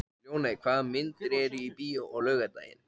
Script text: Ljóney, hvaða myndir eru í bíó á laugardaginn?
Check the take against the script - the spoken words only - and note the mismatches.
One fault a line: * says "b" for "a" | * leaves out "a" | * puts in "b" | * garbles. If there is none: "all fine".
all fine